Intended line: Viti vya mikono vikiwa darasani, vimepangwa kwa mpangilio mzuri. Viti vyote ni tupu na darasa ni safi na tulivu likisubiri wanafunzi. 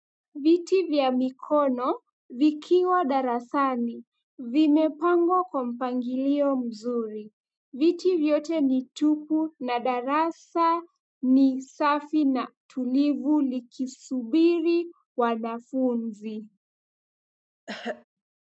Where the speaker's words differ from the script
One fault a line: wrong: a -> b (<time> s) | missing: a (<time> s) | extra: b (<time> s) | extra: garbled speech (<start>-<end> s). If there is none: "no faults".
no faults